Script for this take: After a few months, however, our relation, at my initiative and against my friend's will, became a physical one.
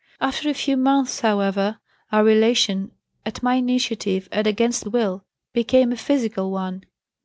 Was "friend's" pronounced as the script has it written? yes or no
no